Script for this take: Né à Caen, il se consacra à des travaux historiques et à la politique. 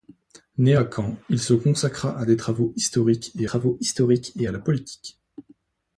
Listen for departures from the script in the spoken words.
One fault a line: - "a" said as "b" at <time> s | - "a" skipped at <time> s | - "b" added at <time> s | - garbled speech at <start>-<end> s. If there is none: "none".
- "travaux historiques et" added at 3.4 s